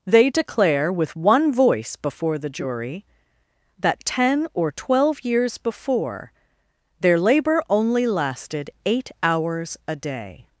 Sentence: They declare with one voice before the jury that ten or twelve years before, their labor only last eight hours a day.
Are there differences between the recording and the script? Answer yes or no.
yes